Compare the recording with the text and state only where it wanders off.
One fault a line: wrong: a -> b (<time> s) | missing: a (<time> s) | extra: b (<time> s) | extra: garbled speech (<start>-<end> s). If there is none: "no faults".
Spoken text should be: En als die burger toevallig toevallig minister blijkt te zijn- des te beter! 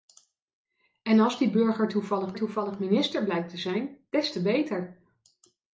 no faults